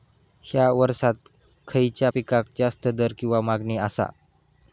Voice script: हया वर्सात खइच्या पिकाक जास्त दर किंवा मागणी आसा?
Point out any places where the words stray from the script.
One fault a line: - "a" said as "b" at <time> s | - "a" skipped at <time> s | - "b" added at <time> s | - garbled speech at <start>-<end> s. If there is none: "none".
none